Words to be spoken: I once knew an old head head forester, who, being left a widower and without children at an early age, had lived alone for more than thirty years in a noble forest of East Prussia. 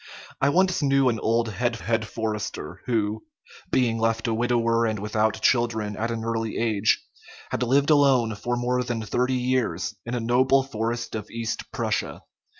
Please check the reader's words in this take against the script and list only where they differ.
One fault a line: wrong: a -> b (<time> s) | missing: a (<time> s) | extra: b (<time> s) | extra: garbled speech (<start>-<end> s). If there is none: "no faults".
no faults